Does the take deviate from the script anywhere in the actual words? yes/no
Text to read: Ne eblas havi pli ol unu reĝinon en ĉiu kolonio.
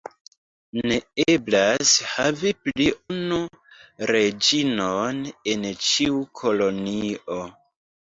yes